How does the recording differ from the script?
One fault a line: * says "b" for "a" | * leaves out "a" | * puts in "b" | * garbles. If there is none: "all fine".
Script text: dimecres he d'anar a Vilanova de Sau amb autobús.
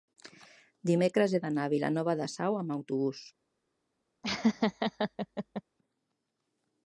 all fine